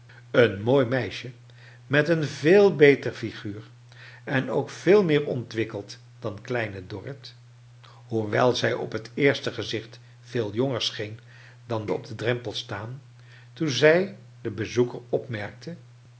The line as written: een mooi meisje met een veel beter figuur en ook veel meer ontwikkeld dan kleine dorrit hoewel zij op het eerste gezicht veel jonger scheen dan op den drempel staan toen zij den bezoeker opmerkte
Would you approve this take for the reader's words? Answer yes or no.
yes